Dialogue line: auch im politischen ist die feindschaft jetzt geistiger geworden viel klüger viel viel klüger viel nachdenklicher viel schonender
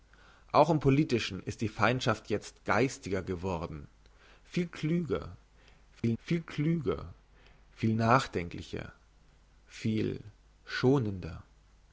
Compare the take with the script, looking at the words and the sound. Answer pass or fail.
fail